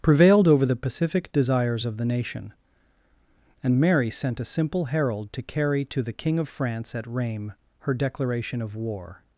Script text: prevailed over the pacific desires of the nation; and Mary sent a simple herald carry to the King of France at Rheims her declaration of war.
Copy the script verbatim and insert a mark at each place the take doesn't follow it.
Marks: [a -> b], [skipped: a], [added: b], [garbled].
prevailed over the pacific desires of the nation; and Mary sent a simple herald [added: to] carry to the King of France at Rheims her declaration of war.